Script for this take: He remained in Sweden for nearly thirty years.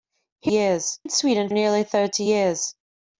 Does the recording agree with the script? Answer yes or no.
no